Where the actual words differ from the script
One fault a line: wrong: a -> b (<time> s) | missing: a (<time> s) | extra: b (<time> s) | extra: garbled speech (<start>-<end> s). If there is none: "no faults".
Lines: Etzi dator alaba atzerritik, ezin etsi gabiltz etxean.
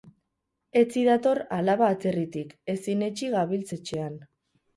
no faults